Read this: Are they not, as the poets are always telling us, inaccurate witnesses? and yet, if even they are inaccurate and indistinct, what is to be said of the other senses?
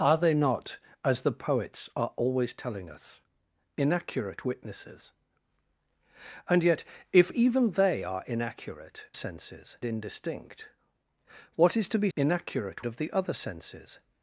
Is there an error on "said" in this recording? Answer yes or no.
yes